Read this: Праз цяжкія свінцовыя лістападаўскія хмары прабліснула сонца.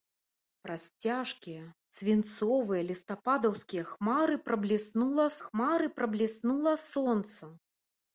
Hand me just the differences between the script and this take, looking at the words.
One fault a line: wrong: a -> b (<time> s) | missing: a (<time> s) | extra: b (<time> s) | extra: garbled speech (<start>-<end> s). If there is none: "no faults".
extra: хмары прабліснула (5.5 s)